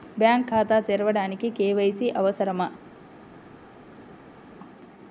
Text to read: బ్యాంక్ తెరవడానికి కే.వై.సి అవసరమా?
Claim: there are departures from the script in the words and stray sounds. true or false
true